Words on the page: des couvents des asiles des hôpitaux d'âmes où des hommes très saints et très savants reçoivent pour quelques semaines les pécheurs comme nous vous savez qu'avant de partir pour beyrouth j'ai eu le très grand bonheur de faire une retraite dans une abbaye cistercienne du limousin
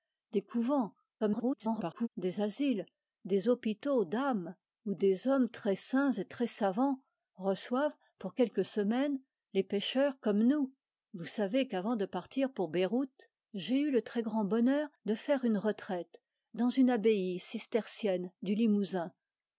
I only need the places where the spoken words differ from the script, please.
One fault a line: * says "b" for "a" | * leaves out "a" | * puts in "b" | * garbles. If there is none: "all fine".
* garbles